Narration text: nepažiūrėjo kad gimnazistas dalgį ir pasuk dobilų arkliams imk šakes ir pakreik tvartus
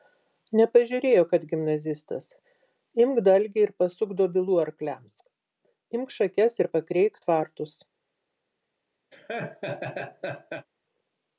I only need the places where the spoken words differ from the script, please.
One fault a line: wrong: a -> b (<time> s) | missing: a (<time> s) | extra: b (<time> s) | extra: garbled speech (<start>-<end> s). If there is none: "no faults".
extra: imk (3.0 s)